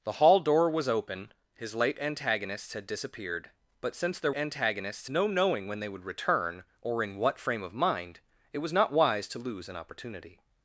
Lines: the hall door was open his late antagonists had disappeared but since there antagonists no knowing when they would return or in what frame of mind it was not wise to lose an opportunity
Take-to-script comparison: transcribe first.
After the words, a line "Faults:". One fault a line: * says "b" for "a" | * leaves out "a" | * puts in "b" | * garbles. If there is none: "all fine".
the hall door was open his late antagonists had disappeared but since there antagonists no knowing when they would return or in what frame of mind it was not wise to lose an opportunity
Faults:
all fine